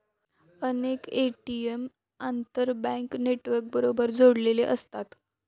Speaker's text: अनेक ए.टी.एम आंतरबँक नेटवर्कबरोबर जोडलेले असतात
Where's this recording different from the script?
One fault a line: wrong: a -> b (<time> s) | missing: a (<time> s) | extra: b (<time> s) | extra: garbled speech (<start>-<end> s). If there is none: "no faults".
no faults